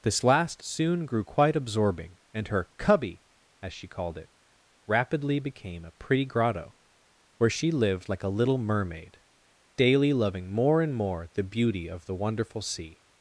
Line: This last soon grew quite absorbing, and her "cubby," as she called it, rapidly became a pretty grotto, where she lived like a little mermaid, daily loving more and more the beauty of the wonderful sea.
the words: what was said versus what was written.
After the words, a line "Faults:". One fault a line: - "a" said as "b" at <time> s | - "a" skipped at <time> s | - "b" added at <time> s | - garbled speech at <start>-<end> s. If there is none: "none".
This last soon grew quite absorbing, and her "cubby," as she called it, rapidly became a pretty grotto, where she lived like a little mermaid, daily loving more and more the beauty of the wonderful sea.
Faults:
none